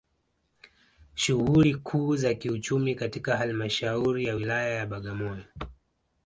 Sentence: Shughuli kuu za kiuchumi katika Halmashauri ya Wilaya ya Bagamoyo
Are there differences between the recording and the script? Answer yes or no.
no